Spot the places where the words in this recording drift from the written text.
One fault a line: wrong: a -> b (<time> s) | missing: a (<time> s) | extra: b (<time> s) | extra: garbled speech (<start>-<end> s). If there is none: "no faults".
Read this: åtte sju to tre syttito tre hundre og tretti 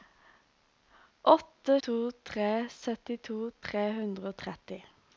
missing: sju (1.8 s)